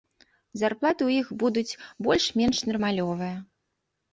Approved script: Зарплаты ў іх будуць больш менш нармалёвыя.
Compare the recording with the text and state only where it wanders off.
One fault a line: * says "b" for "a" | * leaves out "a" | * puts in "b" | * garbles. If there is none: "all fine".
all fine